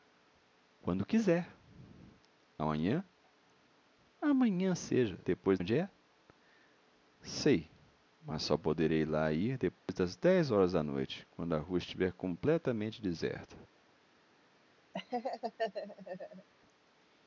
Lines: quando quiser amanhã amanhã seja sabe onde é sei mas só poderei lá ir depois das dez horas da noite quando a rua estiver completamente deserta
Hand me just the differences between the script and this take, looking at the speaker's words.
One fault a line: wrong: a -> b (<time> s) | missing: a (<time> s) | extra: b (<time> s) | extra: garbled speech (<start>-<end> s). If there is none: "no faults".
wrong: sabe -> depois (5.2 s)